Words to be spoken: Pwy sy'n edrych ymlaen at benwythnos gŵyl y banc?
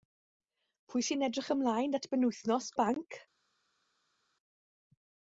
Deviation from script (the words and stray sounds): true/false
true